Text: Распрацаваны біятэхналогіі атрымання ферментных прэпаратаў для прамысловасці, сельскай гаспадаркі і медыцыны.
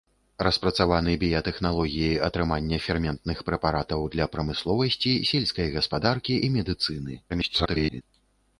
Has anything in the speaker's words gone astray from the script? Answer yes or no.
yes